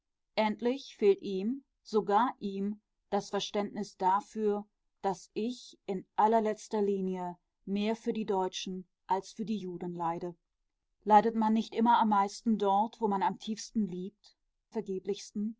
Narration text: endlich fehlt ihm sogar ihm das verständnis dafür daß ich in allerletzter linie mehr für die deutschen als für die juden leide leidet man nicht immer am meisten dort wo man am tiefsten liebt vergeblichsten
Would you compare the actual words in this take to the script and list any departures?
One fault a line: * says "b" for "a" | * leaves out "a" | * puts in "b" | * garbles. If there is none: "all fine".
all fine